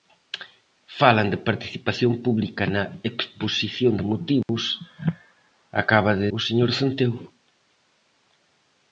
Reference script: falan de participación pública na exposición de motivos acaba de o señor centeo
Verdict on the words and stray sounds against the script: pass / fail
fail